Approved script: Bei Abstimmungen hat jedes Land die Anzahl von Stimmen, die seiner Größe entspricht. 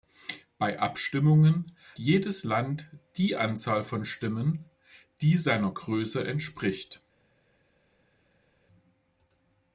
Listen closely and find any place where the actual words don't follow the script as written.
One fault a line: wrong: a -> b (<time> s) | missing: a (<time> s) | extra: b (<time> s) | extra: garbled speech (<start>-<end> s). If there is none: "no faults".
missing: hat (1.7 s)